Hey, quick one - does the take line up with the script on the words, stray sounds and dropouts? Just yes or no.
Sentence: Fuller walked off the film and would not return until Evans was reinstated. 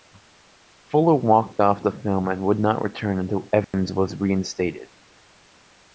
no